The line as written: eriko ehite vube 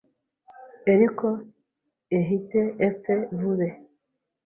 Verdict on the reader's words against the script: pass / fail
fail